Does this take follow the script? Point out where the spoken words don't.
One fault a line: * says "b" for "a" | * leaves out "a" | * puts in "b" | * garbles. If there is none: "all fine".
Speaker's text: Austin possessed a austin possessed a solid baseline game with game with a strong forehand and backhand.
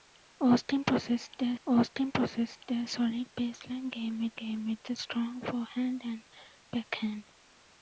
all fine